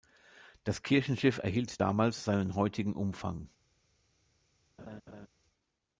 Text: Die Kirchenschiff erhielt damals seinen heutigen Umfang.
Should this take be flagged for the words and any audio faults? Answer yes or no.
yes